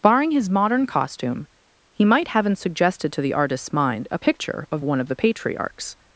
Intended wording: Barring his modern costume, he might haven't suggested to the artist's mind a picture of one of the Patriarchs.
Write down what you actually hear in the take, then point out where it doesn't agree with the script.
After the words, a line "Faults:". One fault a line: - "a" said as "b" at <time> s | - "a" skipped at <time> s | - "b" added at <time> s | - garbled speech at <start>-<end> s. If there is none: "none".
Barring his modern costume, he might haven't suggested to the artist's mind a picture of one of the Patriarchs.
Faults:
none